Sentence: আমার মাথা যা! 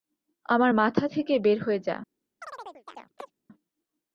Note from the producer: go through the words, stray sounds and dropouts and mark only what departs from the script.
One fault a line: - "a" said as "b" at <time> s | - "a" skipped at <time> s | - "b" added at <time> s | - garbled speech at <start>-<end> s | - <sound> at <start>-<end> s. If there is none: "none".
- "থেকে বের হয়ে" added at 1.1 s
- chirp at 2.4-3.3 s